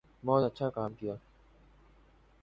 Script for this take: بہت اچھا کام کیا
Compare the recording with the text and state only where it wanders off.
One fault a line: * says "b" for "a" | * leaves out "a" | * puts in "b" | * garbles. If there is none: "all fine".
all fine